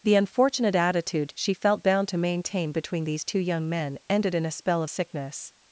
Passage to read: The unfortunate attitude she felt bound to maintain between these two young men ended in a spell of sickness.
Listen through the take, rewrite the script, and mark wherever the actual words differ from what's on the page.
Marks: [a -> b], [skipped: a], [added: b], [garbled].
The unfortunate attitude she felt bound to maintain between these two young men ended in a spell of sickness.